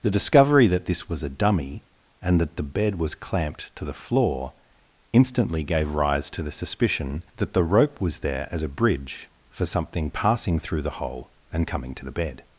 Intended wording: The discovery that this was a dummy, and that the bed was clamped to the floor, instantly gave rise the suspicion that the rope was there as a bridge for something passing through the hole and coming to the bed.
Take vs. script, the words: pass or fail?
fail